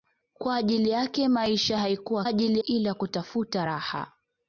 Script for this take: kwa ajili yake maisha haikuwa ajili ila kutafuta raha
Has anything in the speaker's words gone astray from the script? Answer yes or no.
no